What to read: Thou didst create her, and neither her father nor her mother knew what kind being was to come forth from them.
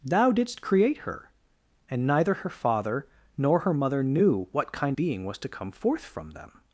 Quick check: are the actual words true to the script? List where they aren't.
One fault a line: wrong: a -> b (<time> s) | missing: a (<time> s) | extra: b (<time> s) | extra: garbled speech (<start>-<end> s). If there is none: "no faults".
no faults